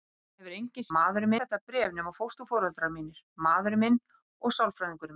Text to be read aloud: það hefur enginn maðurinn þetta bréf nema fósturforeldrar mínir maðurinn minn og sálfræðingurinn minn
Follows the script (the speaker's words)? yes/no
yes